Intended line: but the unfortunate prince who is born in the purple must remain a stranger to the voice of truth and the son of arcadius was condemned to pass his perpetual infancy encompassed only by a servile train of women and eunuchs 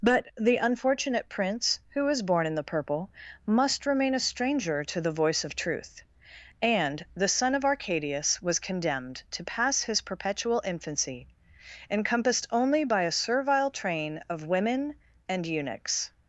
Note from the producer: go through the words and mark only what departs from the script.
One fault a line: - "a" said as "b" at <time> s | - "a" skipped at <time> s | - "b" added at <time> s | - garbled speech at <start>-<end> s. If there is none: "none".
none